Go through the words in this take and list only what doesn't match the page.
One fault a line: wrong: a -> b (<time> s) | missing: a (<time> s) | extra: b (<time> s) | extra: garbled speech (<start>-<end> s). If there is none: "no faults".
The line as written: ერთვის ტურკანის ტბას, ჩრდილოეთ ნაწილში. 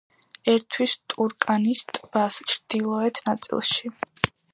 no faults